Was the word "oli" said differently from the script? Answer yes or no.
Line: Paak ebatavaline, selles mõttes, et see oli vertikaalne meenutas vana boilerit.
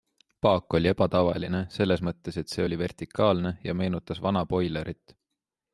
no